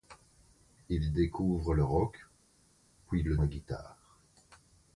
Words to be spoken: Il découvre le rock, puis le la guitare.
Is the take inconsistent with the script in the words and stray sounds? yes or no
no